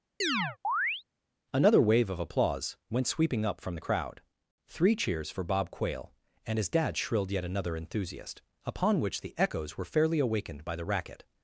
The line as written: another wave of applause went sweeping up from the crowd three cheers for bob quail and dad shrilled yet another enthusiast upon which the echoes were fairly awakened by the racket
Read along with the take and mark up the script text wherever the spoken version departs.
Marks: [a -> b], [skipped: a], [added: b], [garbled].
another wave of applause went sweeping up from the crowd three cheers for bob quail and [added: his] dad shrilled yet another enthusiast upon which the echoes were fairly awakened by the racket